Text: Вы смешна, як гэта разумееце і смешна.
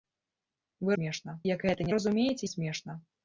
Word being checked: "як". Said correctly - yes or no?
yes